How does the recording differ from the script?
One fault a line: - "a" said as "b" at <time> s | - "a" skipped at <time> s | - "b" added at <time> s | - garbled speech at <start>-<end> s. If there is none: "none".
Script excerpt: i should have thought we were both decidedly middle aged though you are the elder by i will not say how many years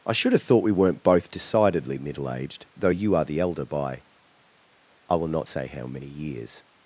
- "were" said as "weren't" at 0.7 s